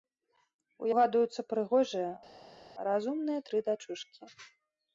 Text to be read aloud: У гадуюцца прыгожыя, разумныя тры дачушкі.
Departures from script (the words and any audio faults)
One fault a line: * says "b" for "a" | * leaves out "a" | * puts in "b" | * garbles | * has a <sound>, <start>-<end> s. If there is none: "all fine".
all fine